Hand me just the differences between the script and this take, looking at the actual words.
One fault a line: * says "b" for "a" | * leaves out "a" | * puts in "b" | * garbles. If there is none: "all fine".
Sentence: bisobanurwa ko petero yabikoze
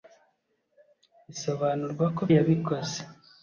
* leaves out "petero"